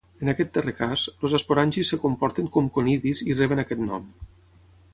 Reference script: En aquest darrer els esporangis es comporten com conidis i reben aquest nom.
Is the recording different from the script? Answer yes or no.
yes